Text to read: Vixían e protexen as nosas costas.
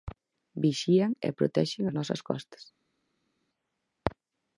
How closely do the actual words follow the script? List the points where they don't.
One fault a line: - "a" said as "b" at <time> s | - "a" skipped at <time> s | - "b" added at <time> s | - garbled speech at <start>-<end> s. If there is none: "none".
none